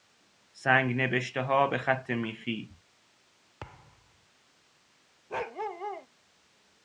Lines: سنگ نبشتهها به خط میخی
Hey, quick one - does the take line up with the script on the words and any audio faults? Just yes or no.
no